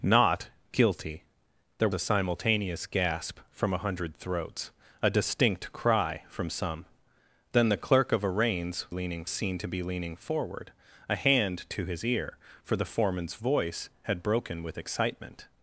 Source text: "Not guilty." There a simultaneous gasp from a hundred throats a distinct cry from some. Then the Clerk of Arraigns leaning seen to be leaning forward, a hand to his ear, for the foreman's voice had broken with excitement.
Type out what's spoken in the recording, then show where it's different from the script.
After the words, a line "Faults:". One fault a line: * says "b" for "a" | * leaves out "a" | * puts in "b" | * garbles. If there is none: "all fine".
"Not guilty." There a simultaneous gasp from a hundred throats a distinct cry from some. Then the Clerk of Arraigns leaning seen to be leaning forward, a hand to his ear, for the foreman's voice had broken with excitement.
Faults:
all fine